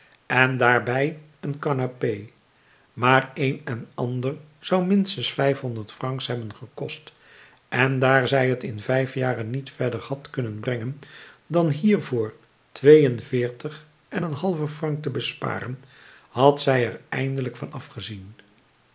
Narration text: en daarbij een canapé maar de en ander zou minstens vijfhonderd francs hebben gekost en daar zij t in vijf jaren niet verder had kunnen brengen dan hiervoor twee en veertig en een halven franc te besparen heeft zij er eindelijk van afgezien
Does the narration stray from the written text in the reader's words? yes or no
yes